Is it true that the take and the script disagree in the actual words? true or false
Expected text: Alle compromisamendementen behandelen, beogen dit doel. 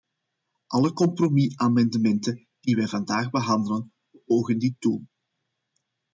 true